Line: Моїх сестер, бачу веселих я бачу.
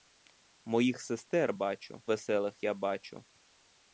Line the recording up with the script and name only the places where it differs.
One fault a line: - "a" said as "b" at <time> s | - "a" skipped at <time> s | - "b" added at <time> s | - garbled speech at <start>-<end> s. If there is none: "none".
none